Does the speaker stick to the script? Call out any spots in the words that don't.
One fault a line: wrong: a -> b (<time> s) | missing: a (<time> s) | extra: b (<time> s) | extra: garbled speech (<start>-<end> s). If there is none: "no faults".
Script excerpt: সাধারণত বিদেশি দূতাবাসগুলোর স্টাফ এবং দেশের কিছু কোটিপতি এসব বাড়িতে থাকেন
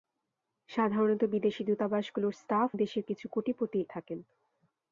missing: এবং (2.7 s)
missing: এসব বাড়িতে (3.8 s)